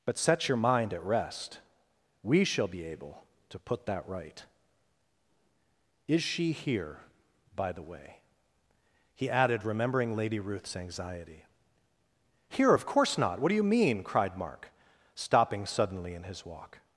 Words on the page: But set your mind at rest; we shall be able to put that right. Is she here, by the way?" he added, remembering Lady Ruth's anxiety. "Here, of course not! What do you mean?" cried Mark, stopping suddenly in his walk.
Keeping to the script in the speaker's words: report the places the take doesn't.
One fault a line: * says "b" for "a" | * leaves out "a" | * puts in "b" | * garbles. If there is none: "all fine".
all fine